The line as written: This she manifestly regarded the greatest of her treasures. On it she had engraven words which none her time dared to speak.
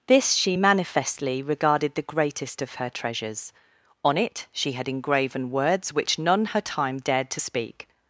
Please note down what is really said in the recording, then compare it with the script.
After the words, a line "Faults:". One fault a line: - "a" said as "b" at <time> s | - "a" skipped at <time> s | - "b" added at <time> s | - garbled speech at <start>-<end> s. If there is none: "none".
This she manifestly regarded the greatest of her treasures. On it she had engraven words which none her time dared to speak.
Faults:
none